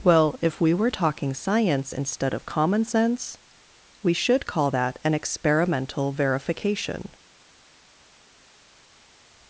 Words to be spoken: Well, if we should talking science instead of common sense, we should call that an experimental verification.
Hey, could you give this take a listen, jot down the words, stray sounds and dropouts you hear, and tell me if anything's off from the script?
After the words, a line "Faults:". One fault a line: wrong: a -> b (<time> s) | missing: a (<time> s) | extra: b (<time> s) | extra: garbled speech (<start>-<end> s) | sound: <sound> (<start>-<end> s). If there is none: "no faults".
Well, if we were talking science instead of common sense, we should call that an experimental verification.
Faults:
wrong: should -> were (0.7 s)